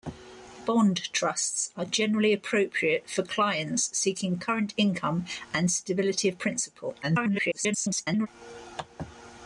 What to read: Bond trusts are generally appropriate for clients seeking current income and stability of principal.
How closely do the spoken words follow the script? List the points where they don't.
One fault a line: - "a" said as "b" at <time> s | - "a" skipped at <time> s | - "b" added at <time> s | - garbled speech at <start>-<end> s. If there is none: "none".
- garbled speech at 7.0-8.3 s